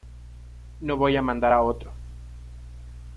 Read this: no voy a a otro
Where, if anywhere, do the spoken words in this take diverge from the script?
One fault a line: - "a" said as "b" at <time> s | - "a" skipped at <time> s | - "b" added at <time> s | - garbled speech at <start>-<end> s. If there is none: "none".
- "mandar" added at 1.2 s